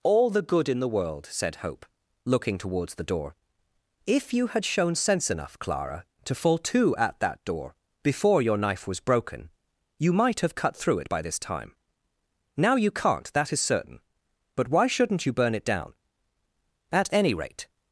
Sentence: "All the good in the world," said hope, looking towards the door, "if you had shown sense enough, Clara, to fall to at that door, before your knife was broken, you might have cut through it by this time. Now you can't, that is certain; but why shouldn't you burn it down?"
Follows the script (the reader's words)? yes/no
no